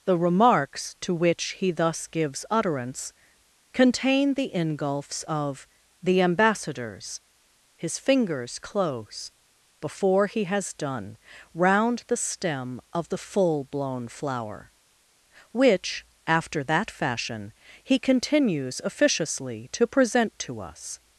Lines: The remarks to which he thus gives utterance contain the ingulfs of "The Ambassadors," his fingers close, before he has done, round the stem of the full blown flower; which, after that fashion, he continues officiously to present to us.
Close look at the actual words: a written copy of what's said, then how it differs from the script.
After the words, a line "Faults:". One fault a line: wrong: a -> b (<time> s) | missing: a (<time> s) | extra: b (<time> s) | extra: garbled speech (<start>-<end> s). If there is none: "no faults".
The remarks to which he thus gives utterance contain the ingulfs of "The Ambassadors," his fingers close, before he has done, round the stem of the full blown flower; which, after that fashion, he continues officiously to present to us.
Faults:
no faults